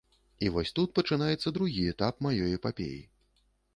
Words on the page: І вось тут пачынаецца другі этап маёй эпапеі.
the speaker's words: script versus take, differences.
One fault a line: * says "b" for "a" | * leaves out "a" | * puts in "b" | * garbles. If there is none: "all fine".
all fine